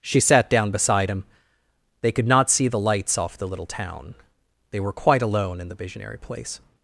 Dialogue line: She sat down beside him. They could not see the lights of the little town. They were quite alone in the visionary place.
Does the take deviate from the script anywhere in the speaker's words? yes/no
yes